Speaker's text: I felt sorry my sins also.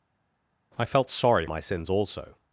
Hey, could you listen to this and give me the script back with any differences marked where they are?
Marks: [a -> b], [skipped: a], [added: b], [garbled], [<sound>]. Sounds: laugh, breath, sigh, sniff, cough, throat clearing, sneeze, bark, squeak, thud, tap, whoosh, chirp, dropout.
I felt sorry my sins also.